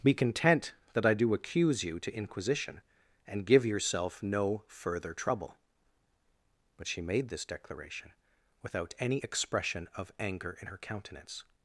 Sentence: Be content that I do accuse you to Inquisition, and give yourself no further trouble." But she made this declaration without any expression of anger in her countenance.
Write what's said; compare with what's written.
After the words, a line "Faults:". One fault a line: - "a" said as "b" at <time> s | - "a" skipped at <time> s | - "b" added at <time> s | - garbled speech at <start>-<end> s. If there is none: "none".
Be content that I do accuse you to Inquisition, and give yourself no further trouble." But she made this declaration without any expression of anger in her countenance.
Faults:
none